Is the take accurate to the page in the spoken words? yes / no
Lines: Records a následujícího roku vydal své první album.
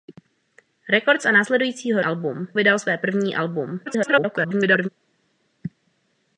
no